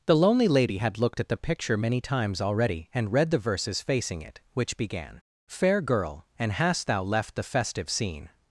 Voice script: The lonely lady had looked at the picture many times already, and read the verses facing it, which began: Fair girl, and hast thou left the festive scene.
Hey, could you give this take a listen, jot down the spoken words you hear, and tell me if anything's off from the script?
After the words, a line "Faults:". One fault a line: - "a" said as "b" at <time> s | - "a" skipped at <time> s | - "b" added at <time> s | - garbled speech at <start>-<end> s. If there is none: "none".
The lonely lady had looked at the picture many times already, and read the verses facing it, which began: Fair girl, and hast thou left the festive scene.
Faults:
none